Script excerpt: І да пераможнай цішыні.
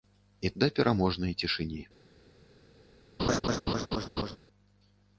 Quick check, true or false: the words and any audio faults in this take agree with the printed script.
false